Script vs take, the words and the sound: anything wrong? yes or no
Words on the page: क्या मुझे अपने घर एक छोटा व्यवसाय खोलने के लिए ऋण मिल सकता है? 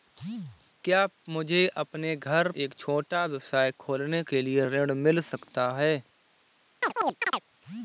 yes